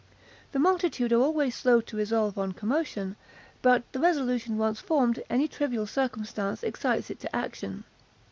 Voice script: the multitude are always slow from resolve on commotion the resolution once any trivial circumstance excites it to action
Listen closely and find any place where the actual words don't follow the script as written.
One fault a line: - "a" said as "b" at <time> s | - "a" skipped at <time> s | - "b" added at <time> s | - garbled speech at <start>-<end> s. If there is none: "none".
- "from" said as "to" at 1.8 s
- "but" added at 3.6 s
- "formed" added at 4.8 s